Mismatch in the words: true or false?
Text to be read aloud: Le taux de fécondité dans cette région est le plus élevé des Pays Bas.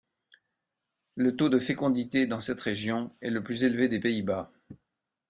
false